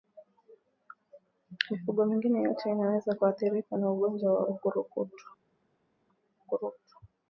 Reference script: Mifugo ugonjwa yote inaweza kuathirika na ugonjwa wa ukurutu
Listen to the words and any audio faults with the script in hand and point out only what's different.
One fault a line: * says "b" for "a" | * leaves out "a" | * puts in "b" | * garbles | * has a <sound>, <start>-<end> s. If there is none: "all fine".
* says "mingine" for "ugonjwa"